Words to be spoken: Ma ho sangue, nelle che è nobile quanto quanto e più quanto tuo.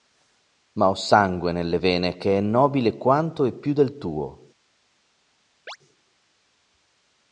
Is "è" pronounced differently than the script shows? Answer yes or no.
no